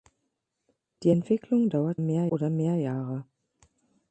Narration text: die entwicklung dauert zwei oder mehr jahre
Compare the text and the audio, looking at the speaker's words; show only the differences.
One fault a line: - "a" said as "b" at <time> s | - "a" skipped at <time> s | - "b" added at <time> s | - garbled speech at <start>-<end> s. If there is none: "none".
- "zwei" said as "mehr" at 2.0 s